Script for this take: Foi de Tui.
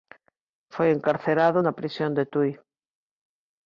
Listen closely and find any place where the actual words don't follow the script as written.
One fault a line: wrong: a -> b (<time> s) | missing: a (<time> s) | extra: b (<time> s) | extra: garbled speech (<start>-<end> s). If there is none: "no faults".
extra: encarcerado na prisión (0.9 s)